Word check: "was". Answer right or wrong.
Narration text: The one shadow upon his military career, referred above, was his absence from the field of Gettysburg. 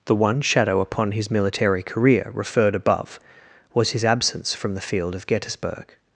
right